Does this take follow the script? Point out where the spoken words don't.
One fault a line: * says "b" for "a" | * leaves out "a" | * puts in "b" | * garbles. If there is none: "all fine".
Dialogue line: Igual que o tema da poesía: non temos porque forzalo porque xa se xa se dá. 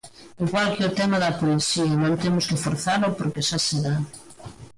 * says "que" for "porque"
* leaves out "xa se"